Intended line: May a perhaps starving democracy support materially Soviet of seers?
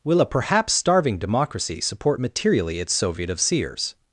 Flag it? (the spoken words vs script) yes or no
yes